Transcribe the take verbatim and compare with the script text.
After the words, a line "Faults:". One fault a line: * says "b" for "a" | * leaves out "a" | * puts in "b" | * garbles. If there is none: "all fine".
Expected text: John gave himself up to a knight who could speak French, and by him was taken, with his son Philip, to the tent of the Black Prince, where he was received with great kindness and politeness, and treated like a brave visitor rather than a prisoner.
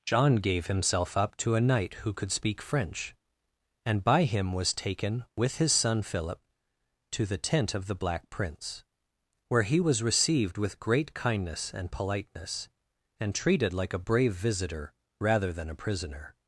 John gave himself up to a knight who could speak French, and by him was taken, with his son Philip, to the tent of the Black Prince, where he was received with great kindness and politeness, and treated like a brave visitor rather than a prisoner.
Faults:
all fine